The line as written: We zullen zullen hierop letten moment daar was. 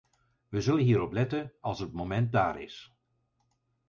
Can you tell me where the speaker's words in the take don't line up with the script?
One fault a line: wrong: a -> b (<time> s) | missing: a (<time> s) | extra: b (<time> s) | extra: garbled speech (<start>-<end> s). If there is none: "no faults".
missing: zullen (0.8 s)
extra: als het (1.6 s)
wrong: was -> is (2.6 s)